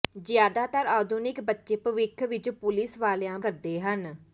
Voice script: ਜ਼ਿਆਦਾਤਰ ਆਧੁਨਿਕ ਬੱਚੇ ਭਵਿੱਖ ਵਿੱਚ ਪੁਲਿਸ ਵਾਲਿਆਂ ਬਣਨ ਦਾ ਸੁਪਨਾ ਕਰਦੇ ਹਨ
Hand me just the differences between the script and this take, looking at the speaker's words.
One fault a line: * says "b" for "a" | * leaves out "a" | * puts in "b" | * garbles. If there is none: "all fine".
* leaves out "ਬਣਨ ਦਾ ਸੁਪਨਾ"